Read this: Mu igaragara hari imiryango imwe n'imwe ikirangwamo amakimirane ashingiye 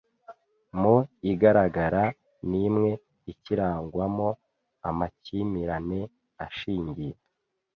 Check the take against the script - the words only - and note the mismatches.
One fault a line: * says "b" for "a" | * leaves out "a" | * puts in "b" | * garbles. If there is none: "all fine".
* leaves out "hari imiryango imwe"